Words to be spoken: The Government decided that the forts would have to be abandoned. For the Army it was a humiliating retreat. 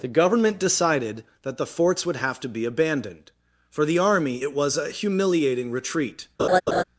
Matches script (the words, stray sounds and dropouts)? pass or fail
fail